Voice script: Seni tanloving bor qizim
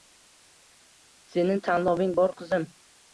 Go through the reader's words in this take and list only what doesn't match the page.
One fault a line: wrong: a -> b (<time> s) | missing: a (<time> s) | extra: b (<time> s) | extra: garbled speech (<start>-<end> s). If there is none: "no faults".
no faults